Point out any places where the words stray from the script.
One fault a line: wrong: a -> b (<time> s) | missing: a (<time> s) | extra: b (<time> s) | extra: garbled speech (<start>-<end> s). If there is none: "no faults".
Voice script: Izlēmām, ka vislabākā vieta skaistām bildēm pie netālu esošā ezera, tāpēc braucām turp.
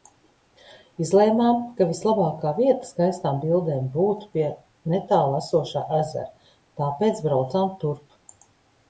extra: būtu (4.0 s)